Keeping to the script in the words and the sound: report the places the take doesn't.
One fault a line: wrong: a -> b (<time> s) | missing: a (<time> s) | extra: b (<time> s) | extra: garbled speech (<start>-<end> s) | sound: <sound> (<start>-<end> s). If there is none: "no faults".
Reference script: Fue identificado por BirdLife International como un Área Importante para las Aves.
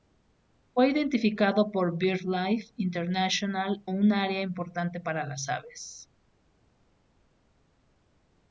missing: como (3.9 s)